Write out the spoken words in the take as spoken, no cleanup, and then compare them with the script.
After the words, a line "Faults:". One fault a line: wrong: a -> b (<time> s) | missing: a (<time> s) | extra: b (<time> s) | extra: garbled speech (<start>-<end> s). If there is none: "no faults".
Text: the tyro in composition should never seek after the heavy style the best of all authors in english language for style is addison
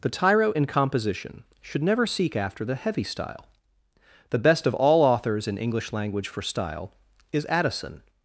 the tyro in composition should never seek after the heavy style the best of all authors in english language for style is addison
Faults:
no faults